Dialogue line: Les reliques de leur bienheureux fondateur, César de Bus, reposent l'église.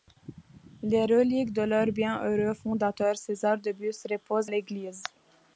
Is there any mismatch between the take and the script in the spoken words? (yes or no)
no